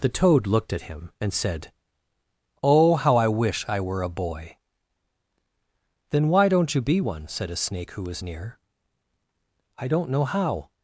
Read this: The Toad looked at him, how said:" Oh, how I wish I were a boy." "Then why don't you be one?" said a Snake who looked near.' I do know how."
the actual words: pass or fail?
fail